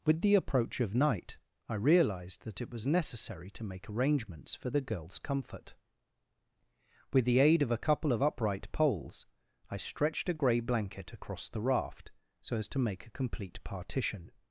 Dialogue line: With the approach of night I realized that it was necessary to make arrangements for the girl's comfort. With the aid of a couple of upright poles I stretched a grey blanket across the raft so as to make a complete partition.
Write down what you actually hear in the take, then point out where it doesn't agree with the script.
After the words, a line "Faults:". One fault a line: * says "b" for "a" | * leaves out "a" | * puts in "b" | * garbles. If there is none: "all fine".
With the approach of night I realized that it was necessary to make arrangements for the girl's comfort. With the aid of a couple of upright poles I stretched a grey blanket across the raft so as to make a complete partition.
Faults:
all fine